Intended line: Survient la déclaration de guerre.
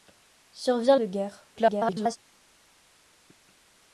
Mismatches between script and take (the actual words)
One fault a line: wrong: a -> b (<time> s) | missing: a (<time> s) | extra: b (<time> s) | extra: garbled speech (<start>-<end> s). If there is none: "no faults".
missing: la déclaration (0.9 s)
extra: garbled speech (1.6-2.2 s)